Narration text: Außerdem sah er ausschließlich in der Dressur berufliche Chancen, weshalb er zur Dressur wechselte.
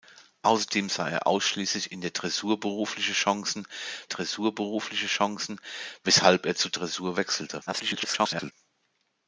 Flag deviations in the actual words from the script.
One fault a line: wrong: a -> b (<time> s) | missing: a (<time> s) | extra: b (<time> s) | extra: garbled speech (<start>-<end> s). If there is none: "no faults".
extra: Dressur berufliche Chancen (4.0 s)
extra: garbled speech (7.7-8.5 s)